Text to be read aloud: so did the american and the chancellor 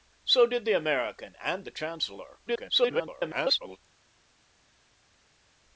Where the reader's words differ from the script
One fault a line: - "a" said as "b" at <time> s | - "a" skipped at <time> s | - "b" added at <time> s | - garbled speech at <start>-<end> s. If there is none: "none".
- garbled speech at 2.5-3.8 s